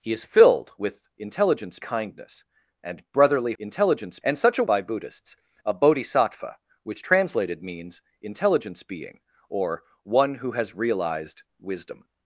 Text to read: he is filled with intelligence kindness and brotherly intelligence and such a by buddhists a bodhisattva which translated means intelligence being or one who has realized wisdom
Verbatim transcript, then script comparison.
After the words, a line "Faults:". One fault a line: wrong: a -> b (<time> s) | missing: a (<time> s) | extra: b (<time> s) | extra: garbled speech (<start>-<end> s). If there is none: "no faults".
he is filled with intelligence kindness and brotherly intelligence and such a by buddhists a bodhisattva which translated means intelligence being or one who has realized wisdom
Faults:
no faults